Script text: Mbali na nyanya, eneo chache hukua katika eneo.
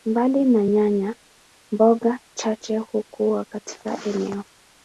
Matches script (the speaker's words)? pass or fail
fail